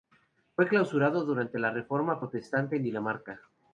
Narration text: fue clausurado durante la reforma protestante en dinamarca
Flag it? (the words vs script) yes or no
no